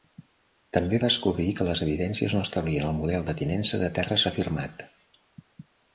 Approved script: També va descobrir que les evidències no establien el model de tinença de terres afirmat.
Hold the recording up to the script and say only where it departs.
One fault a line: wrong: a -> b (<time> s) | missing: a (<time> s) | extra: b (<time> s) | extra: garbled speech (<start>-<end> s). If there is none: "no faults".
missing: va (1.0 s)